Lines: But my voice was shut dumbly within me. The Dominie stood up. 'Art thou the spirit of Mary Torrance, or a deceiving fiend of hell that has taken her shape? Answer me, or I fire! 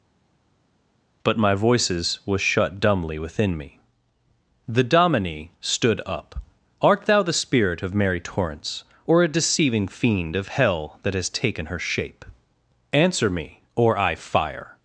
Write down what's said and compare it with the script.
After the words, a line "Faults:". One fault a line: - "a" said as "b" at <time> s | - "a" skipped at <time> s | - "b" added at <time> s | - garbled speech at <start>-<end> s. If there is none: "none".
But my voices was shut dumbly within me. The Dominie stood up. 'Art thou the spirit of Mary Torrance, or a deceiving fiend of hell that has taken her shape? Answer me, or I fire!
Faults:
- "voice" said as "voices" at 1.5 s